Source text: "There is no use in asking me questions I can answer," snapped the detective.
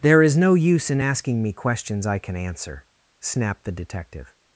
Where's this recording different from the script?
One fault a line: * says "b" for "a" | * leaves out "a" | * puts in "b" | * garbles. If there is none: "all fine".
all fine